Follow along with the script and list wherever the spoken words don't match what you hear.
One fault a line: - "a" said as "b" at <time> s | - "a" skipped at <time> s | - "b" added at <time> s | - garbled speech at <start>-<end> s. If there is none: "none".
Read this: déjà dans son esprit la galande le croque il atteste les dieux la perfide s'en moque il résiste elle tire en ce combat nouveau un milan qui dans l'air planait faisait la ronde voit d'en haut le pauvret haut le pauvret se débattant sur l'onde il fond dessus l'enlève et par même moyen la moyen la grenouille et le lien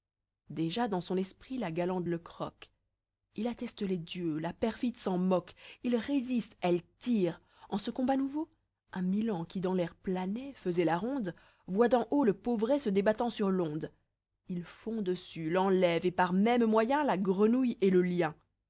- "haut le pauvret" skipped at 12.8 s
- "moyen la" skipped at 17.2 s